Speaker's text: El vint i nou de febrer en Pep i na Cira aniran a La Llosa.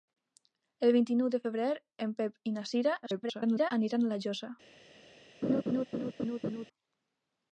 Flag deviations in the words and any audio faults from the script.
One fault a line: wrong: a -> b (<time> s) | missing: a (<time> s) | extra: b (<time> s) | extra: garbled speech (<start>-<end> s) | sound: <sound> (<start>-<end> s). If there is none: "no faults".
extra: garbled speech (3.0-3.7 s)
sound: laugh (5.4-6.7 s)